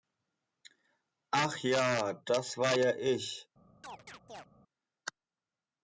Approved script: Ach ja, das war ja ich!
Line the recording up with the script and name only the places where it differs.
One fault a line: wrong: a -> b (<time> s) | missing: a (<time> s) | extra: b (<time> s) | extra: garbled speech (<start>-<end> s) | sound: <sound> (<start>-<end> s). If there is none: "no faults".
sound: chirp (3.8-4.5 s)